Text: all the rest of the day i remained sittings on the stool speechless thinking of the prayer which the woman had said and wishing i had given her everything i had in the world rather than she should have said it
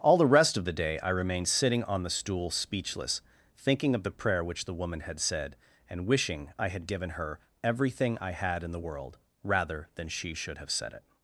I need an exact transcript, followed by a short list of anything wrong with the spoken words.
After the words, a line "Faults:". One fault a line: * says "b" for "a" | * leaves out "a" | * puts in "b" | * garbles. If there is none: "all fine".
all the rest of the day i remained sitting on the stool speechless thinking of the prayer which the woman had said and wishing i had given her everything i had in the world rather than she should have said it
Faults:
* says "sitting" for "sittings"